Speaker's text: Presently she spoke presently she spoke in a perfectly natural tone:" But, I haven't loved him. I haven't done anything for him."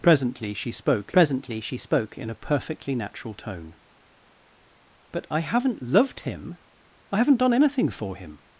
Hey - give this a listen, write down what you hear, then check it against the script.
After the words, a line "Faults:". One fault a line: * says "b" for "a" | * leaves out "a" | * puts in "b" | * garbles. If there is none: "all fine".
Presently she spoke presently she spoke in a perfectly natural tone:" But, I haven't loved him. I haven't done anything for him."
Faults:
all fine